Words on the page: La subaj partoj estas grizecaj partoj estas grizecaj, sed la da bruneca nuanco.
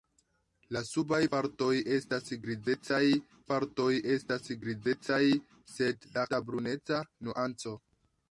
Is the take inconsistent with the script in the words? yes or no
no